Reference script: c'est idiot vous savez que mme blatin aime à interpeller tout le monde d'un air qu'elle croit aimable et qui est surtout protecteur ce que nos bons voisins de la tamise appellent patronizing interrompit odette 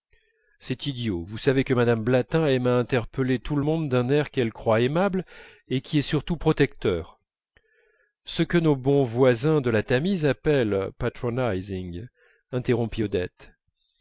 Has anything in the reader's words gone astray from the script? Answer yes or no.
no